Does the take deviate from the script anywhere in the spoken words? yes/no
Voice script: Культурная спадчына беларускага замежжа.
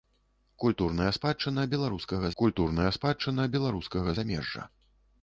yes